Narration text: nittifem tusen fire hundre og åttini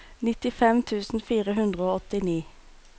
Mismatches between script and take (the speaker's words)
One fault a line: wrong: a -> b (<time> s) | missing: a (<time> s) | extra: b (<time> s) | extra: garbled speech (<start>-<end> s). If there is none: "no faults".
no faults